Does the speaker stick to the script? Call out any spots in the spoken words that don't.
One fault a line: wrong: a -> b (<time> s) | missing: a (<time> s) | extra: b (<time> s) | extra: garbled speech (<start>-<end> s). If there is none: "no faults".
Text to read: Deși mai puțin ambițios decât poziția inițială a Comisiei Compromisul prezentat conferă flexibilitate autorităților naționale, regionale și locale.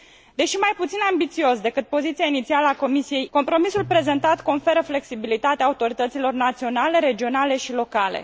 no faults